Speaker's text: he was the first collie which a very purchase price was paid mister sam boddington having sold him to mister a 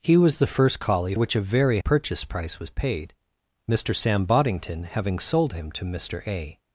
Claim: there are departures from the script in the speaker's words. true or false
false